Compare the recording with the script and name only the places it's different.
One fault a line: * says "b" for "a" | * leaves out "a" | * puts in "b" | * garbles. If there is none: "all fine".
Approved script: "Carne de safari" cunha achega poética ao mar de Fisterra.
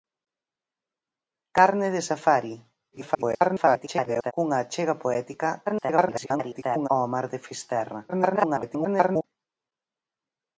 * garbles
* garbles
* garbles